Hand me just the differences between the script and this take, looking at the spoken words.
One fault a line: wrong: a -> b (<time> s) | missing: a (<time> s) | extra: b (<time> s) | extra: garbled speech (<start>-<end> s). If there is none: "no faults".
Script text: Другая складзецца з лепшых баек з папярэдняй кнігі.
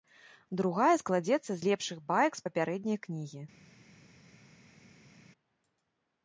no faults